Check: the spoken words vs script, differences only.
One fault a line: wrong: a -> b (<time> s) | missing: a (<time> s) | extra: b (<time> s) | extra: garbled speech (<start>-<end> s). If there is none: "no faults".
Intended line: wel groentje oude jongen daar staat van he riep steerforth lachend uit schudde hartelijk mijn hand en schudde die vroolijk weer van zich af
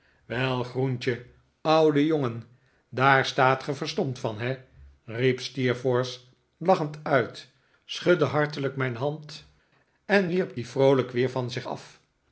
extra: ge verstomd (3.6 s)
wrong: schudde -> wierp (10.3 s)